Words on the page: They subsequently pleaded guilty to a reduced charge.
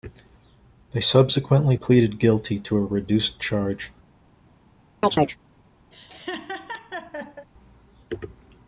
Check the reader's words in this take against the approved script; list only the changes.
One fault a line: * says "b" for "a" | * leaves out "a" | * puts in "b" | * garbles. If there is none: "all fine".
all fine